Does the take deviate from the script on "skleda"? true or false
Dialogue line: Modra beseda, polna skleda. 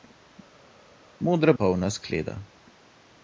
false